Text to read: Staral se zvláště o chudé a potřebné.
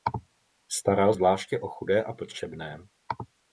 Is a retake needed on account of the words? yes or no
yes